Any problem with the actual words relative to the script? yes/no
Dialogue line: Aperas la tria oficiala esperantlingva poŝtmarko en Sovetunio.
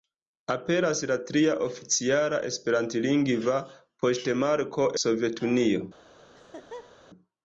yes